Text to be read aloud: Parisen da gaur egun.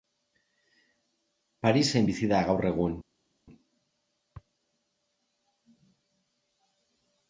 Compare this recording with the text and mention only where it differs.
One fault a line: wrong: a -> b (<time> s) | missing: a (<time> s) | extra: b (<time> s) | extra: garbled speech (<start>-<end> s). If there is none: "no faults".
extra: bizi (2.1 s)